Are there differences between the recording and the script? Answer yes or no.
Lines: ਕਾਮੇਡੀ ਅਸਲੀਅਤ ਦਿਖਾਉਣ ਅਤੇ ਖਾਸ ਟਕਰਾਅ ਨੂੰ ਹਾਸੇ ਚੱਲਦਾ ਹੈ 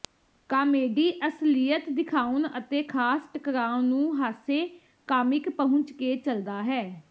yes